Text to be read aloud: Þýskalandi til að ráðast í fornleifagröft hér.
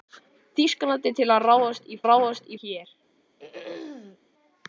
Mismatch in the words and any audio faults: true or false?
true